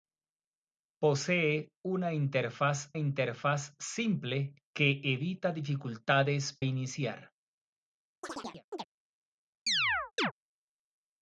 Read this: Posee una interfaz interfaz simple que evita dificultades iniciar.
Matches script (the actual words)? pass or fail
pass